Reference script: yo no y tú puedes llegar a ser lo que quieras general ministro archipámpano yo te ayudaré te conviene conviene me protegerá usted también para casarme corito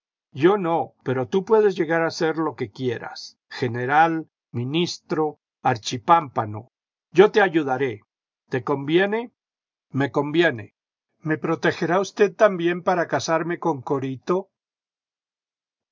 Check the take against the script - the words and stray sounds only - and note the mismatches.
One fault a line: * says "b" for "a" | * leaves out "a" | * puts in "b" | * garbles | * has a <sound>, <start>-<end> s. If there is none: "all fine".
* says "pero" for "y"
* puts in "me"
* puts in "con"